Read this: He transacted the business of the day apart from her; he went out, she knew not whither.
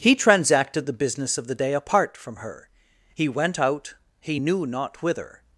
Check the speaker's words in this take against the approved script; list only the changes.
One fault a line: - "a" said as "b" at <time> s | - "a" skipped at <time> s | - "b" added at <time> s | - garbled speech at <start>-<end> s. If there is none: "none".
- "she" said as "he" at 4.2 s